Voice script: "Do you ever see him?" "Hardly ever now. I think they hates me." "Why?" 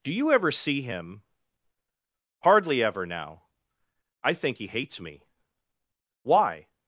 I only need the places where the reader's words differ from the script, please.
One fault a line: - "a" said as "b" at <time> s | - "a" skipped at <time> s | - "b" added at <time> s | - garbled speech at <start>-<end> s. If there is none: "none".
- "they" said as "he" at 4.5 s